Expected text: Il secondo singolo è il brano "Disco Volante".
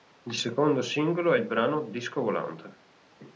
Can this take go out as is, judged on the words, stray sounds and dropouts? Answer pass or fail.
pass